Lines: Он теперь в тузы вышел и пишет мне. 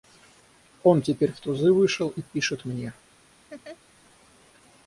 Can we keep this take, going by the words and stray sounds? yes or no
no